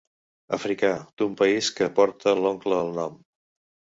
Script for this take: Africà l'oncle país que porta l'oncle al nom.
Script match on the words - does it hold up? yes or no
no